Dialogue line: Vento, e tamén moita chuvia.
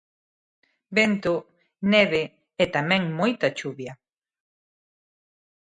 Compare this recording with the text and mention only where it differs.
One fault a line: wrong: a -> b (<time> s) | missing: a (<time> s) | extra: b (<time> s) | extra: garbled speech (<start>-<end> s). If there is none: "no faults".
extra: neve (1.9 s)